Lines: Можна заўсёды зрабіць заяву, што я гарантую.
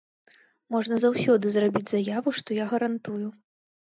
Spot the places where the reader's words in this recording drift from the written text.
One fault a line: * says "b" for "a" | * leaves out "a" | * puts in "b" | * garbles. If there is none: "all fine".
all fine